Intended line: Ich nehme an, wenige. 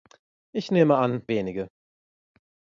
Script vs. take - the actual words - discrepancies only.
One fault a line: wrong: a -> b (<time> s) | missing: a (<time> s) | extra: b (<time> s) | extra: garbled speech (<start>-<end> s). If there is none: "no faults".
no faults